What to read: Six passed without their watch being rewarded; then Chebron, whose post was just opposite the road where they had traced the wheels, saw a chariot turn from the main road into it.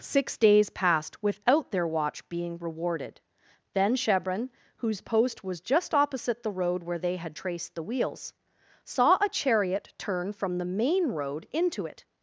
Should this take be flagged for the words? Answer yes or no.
yes